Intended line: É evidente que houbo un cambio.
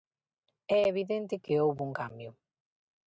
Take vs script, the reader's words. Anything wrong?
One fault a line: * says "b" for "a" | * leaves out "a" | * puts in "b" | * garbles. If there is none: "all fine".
all fine